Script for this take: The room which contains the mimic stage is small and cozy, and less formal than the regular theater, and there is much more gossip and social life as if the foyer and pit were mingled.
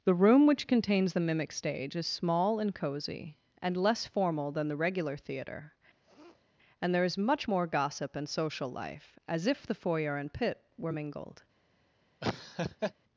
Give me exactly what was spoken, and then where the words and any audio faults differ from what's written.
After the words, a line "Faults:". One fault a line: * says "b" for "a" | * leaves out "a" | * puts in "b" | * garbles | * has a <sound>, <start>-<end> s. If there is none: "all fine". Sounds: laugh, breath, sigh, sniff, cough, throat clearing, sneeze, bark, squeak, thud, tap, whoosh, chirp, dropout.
The room which contains the mimic stage is small and cozy, and less formal than the regular theater, and there is much more gossip and social life as if the foyer and pit were mingled.
Faults:
* has a sniff, 6.0-6.5 s
* has a laugh, 12.2-12.9 s